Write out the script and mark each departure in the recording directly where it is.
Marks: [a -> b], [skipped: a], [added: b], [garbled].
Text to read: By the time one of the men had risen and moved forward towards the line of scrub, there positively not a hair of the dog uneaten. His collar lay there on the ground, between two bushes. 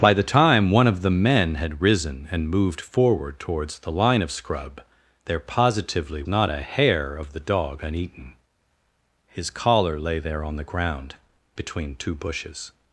By the time one of the men had risen and moved forward towards the line of scrub, there positively not a hair of the dog uneaten. His collar lay there on the ground, between two bushes.